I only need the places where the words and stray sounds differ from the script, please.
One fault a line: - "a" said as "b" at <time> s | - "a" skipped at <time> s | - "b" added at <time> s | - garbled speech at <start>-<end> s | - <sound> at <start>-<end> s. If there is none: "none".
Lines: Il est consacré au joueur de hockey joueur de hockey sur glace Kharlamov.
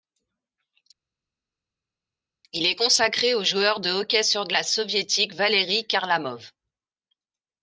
- "joueur de hockey sur glace" said as "sur glace soviétique Valeri" at 4.2 s